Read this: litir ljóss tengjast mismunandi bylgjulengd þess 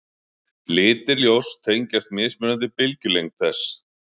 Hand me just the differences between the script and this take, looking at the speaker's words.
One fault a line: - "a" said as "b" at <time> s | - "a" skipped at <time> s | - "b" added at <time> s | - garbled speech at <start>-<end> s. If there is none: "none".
none